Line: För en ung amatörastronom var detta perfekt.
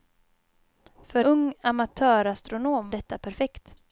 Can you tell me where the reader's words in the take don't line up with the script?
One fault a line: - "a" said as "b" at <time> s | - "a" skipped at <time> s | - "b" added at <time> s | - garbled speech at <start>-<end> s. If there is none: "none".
- "en" skipped at 1.2 s
- "var" skipped at 2.9 s